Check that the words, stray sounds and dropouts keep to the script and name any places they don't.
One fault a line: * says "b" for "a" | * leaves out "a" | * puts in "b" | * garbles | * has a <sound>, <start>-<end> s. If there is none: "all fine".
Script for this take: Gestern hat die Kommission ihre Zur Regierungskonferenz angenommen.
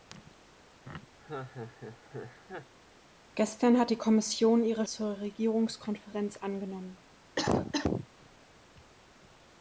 * has a laugh, 1.2-2.7 s
* has a cough, 7.4-8.1 s